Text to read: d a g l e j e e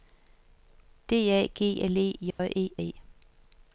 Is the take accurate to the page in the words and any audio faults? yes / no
no